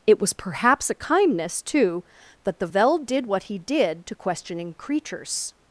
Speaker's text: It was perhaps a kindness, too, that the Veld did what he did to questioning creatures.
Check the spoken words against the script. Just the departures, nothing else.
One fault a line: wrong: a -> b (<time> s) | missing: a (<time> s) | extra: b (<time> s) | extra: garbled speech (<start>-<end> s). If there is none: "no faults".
no faults